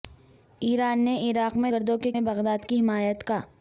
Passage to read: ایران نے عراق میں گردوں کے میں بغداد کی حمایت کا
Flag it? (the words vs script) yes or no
no